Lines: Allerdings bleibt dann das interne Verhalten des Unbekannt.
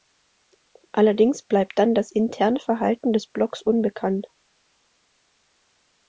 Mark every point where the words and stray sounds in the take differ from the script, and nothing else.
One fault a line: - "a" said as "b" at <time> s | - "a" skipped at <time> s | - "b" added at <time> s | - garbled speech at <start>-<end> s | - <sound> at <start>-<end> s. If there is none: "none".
- "Blocks" added at 3.3 s